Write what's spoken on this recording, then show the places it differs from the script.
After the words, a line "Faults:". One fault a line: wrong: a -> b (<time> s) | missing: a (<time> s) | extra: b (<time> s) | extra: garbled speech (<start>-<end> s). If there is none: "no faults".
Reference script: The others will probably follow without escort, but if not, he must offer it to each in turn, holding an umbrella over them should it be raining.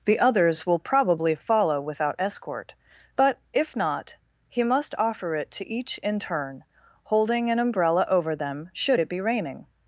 The others will probably follow without escort, but if not, he must offer it to each in turn, holding an umbrella over them should it be raining.
Faults:
no faults